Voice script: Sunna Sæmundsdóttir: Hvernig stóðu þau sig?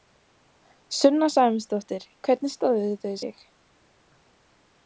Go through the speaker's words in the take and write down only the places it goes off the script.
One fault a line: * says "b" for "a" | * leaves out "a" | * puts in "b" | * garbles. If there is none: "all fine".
all fine